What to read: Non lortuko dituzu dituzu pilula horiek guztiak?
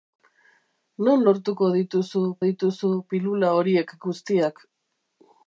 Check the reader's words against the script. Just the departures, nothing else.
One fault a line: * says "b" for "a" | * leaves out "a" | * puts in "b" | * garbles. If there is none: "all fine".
all fine